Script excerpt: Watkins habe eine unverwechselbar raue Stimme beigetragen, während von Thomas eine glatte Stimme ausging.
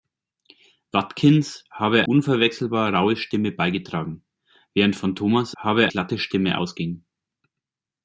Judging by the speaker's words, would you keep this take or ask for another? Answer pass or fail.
fail